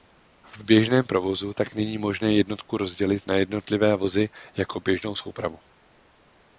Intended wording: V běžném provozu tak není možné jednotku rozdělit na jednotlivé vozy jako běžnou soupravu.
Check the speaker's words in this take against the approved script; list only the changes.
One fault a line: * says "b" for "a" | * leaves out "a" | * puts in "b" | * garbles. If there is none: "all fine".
all fine